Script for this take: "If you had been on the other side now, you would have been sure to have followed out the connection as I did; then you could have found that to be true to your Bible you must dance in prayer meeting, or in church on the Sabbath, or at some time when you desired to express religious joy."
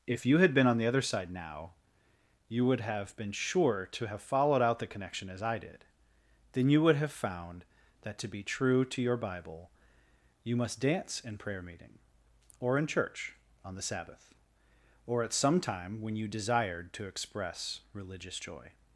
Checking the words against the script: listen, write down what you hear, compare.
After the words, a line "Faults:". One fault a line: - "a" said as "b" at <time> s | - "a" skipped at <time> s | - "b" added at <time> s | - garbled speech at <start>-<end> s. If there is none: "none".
"If you had been on the other side now, you would have been sure to have followed out the connection as I did; then you would have found that to be true to your Bible you must dance in prayer meeting, or in church on the Sabbath, or at some time when you desired to express religious joy."
Faults:
- "could" said as "would" at 6.8 s